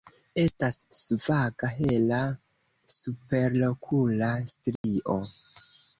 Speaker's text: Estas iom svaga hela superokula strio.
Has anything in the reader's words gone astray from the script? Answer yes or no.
yes